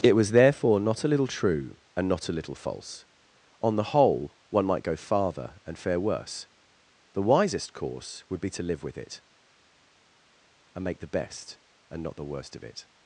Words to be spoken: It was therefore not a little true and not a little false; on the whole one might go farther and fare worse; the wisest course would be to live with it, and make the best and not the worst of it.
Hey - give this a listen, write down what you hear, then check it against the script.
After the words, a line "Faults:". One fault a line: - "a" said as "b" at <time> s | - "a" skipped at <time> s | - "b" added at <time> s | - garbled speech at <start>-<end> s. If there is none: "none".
It was therefore not a little true and not a little false; on the whole one might go farther and fare worse; the wisest course would be to live with it, and make the best and not the worst of it.
Faults:
none